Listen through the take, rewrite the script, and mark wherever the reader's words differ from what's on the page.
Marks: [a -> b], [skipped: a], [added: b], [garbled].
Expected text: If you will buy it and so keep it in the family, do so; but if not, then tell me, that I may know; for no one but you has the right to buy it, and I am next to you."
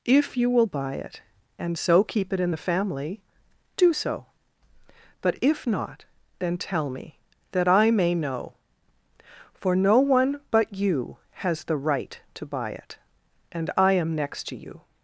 If you will buy it and so keep it in the family, do so; but if not, then tell me, that I may know; for no one but you has the right to buy it, and I am next to you."